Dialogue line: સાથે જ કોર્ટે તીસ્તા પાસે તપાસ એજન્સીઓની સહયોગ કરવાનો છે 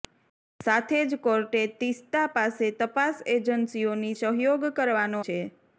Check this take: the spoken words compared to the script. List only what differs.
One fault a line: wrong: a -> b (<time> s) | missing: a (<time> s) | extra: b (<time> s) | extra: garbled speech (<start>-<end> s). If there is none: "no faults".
no faults